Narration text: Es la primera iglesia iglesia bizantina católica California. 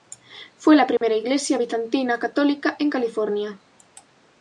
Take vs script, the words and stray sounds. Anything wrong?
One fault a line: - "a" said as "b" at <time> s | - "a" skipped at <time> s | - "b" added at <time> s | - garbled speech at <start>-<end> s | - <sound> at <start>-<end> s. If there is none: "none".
- "Es" said as "Fue" at 0.6 s
- dropout at 1.0-1.0 s
- "iglesia" skipped at 1.6 s
- "en" added at 2.8 s